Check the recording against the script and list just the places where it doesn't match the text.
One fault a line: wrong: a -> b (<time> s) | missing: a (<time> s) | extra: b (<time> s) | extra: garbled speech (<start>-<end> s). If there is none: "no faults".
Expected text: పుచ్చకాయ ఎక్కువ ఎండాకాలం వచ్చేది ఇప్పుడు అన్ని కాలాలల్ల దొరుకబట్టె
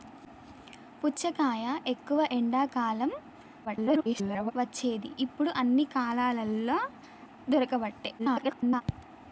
extra: garbled speech (3.6-4.5 s)
extra: garbled speech (8.2-8.8 s)